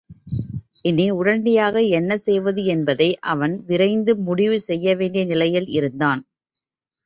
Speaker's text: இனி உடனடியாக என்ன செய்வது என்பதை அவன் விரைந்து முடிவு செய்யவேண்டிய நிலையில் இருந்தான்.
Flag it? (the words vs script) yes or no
no